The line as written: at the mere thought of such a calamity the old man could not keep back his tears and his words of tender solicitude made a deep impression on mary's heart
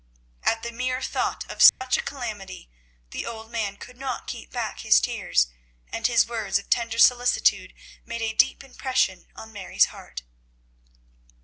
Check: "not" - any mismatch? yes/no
no